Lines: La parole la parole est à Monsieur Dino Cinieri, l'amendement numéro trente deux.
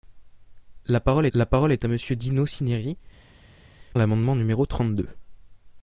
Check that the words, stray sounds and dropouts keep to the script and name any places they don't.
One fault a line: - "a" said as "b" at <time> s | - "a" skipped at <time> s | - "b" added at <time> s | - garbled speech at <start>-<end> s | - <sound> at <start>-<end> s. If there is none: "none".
none